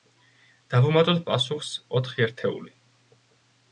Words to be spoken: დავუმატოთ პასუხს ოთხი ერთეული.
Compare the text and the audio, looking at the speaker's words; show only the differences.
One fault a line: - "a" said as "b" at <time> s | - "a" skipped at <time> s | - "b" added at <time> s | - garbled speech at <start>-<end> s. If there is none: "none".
none